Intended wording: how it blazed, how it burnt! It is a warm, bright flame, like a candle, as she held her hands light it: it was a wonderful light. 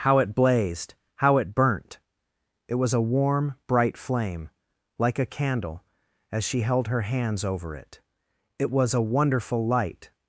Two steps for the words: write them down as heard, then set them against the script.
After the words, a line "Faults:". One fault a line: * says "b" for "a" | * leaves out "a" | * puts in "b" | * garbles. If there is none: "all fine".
how it blazed, how it burnt! It was a warm, bright flame, like a candle, as she held her hands over it: it was a wonderful light.
Faults:
* says "was" for "is"
* says "over" for "light"